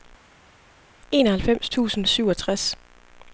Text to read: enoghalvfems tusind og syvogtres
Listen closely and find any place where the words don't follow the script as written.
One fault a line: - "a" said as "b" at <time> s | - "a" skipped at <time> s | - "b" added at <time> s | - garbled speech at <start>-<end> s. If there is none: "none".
none